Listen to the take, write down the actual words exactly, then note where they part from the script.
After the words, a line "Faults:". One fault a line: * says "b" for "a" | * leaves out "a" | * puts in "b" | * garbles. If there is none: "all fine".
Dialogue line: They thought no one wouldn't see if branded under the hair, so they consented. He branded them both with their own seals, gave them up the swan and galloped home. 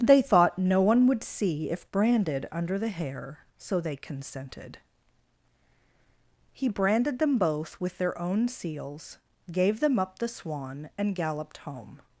They thought no one would see if branded under the hair, so they consented. He branded them both with their own seals, gave them up the swan and galloped home.
Faults:
* says "would" for "wouldn't"